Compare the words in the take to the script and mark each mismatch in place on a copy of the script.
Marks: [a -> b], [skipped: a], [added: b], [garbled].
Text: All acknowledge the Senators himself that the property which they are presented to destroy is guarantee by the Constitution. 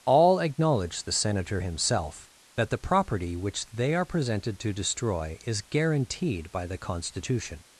All acknowledge the [Senators -> Senator] himself that the property which they are presented to destroy is [guarantee -> guaranteed] by the Constitution.